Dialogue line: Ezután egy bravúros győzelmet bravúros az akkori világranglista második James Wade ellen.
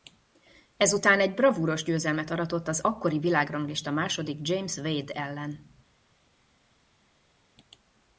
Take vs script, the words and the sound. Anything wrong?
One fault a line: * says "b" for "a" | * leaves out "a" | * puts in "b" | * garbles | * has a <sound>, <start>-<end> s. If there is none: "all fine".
* says "aratott" for "bravúros"